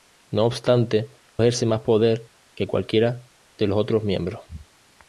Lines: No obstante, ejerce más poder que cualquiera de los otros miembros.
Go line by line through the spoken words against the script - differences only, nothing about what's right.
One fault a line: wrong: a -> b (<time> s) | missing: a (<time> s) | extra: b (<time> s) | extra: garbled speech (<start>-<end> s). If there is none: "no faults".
no faults